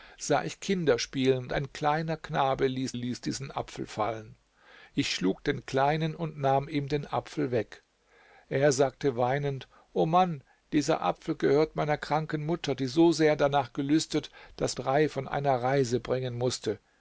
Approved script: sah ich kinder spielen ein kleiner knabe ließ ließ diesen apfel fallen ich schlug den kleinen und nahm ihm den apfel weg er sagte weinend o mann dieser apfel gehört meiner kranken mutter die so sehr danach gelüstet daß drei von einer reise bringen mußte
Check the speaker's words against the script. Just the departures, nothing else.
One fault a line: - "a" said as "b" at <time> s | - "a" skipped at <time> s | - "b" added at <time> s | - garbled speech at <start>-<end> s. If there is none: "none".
none